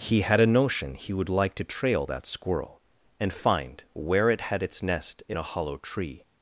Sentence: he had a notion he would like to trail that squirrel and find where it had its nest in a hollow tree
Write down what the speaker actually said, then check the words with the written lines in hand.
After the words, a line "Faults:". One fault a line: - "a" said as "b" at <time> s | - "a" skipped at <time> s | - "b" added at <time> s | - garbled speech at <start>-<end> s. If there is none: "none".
he had a notion he would like to trail that squirrel and find where it had its nest in a hollow tree
Faults:
none